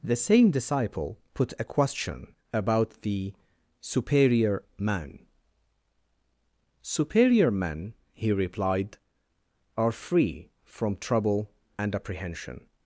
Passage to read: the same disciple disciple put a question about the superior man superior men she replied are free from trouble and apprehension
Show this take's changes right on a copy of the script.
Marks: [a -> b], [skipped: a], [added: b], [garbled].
the same disciple [skipped: disciple] put a question about the superior man superior men [she -> he] replied are free from trouble and apprehension